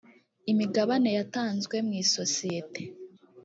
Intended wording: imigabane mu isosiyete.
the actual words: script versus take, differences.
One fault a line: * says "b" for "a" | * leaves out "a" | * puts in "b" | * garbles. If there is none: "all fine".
* puts in "yatanzwe"